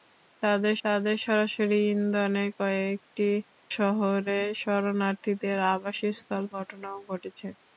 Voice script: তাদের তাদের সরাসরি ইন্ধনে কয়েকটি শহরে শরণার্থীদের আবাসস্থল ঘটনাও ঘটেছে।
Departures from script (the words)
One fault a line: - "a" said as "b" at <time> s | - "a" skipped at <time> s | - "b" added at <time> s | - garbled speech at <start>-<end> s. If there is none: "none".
none